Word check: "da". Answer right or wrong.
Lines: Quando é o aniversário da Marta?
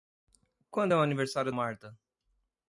wrong